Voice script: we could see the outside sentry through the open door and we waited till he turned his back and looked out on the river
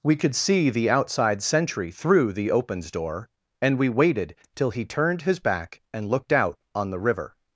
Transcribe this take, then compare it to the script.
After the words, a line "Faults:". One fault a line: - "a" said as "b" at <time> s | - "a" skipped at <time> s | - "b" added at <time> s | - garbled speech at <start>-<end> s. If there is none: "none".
we could see the outside sentry through the opens door and we waited till he turned his back and looked out on the river
Faults:
- "open" said as "opens" at 2.5 s